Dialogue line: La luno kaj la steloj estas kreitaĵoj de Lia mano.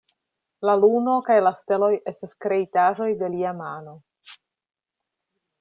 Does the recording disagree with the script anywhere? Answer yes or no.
no